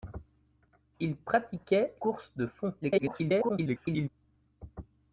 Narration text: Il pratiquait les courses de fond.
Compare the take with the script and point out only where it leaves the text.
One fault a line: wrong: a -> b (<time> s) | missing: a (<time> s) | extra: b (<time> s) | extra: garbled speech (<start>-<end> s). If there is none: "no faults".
missing: les (1.9 s)
extra: garbled speech (2.8-4.1 s)